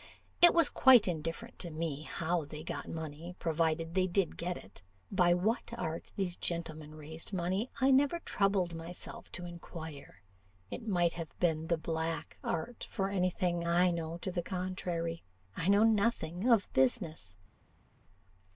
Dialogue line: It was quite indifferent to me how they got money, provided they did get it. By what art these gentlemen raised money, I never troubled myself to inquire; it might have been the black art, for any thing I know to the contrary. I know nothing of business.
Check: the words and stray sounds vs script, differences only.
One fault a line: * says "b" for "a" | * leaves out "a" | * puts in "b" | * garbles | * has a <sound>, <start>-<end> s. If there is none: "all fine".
all fine